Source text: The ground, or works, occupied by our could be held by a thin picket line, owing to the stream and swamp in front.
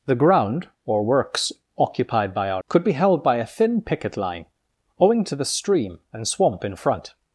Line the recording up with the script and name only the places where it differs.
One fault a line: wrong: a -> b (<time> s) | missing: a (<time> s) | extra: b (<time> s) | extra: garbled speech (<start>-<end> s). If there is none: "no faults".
no faults